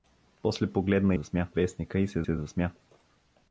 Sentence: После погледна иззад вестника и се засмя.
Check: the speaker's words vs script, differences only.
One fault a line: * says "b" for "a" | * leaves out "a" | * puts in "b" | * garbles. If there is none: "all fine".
* says "засмя" for "иззад"
* puts in "се"